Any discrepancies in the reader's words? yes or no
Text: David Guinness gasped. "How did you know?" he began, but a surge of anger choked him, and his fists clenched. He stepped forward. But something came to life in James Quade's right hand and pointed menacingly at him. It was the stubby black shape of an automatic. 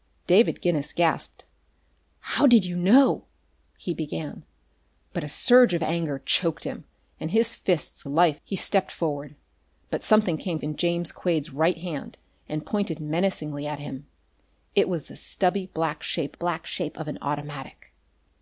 yes